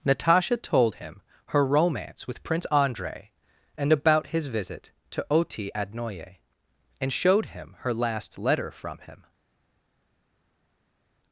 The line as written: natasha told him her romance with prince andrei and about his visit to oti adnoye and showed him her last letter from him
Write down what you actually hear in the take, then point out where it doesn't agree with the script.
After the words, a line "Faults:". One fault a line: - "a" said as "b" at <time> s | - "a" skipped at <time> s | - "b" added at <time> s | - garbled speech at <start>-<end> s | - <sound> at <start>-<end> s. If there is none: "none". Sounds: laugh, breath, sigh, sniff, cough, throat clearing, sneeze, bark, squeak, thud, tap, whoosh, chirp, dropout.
natasha told him her romance with prince andrei and about his visit to oti adnoye and showed him her last letter from him
Faults:
none